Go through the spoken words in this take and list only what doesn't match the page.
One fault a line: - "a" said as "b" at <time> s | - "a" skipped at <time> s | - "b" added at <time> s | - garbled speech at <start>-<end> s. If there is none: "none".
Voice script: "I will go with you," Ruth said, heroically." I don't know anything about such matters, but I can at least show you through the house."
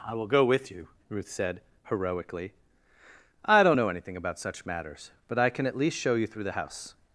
none